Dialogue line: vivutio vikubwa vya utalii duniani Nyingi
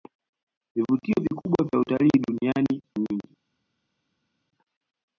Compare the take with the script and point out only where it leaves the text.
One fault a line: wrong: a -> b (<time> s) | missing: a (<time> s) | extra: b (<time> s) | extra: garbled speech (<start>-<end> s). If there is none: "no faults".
no faults